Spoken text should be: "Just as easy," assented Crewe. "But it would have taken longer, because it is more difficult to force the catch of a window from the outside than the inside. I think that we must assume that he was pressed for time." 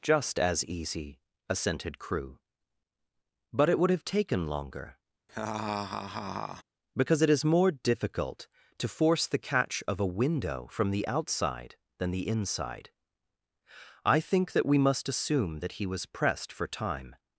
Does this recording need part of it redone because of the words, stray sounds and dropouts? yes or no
yes